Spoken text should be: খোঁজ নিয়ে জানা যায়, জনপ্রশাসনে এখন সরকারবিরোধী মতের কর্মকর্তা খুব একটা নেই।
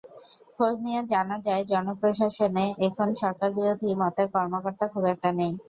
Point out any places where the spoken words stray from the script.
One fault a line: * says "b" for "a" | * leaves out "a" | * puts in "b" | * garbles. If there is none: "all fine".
all fine